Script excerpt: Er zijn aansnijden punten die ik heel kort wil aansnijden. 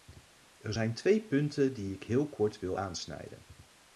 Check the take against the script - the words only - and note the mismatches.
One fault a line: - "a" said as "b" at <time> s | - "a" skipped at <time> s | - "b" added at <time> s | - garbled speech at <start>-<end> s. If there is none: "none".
- "aansnijden" said as "twee" at 0.9 s